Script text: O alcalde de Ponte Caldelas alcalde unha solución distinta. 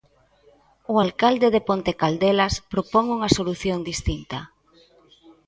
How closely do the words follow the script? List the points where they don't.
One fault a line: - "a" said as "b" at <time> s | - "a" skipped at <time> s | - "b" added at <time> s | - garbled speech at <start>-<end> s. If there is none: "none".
- "alcalde" said as "propón" at 2.7 s